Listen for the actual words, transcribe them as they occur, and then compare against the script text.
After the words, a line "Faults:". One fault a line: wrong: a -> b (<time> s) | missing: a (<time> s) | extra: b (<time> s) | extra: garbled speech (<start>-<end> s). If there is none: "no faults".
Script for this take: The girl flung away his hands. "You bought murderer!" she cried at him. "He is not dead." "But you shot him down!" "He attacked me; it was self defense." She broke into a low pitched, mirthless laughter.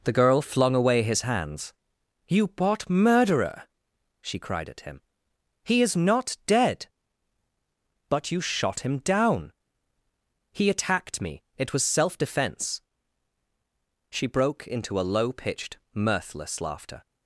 The girl flung away his hands. "You bought murderer!" she cried at him. "He is not dead." "But you shot him down!" "He attacked me; it was self defense." She broke into a low pitched, mirthless laughter.
Faults:
no faults